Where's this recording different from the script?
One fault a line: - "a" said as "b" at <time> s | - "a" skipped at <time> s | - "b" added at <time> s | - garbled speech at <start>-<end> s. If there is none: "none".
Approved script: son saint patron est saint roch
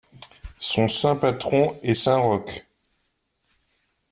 none